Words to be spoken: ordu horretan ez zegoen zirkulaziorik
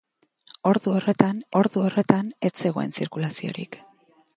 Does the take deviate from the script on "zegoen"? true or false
false